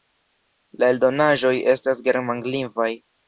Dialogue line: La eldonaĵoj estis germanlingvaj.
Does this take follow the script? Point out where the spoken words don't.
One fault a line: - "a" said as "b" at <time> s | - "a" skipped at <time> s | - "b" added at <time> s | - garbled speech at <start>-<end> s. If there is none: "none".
- "estis" said as "estas" at 1.8 s